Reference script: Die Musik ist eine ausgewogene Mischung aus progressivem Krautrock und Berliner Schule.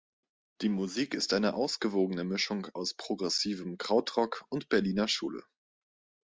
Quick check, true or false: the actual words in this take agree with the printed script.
true